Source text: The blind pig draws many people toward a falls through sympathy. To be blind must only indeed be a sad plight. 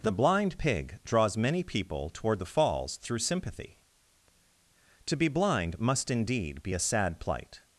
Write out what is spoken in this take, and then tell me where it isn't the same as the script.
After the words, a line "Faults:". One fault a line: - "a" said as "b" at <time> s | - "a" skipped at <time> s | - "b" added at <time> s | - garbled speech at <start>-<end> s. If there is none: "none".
The blind pig draws many people toward the falls through sympathy. To be blind must indeed be a sad plight.
Faults:
- "a" said as "the" at 2.4 s
- "only" skipped at 6.1 s